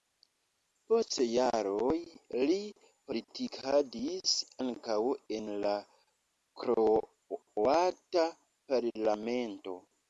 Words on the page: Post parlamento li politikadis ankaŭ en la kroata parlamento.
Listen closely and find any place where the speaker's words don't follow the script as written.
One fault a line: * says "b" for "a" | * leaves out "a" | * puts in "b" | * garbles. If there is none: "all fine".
* says "jaroj" for "parlamento"